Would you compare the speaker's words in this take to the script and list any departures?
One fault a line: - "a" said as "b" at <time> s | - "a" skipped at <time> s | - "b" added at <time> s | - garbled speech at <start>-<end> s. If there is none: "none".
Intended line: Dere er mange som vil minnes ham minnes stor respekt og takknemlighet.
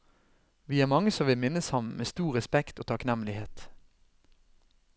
- "Dere" said as "Vi" at 0.7 s
- "minnes" said as "med" at 1.8 s